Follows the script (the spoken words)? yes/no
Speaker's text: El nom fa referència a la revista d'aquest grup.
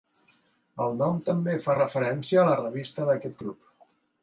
no